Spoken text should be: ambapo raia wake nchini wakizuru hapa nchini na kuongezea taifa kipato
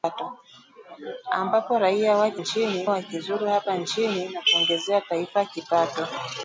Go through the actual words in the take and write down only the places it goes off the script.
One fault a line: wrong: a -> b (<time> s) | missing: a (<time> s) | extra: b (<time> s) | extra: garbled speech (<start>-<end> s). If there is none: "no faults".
no faults